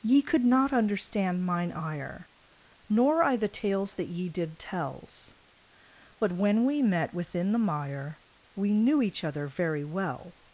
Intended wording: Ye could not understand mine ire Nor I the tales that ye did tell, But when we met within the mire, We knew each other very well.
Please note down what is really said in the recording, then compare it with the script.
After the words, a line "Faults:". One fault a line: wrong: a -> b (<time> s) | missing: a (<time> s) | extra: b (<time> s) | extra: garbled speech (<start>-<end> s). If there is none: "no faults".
Ye could not understand mine ire Nor I the tales that ye did tells, But when we met within the mire, We knew each other very well.
Faults:
wrong: tell -> tells (4.6 s)